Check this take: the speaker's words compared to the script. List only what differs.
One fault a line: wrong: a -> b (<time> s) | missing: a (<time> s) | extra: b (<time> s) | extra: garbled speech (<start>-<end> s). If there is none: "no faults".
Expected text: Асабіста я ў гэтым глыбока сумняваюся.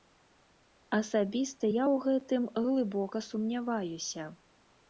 no faults